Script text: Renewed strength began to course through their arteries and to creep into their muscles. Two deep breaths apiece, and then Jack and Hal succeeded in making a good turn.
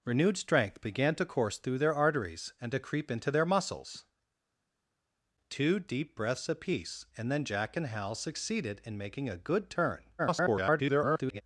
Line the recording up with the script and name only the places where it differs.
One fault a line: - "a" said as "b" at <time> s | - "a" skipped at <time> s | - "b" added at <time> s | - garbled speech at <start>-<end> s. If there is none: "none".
- garbled speech at 10.2-11.4 s